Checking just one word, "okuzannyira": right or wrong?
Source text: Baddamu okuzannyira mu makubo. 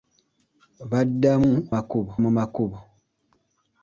wrong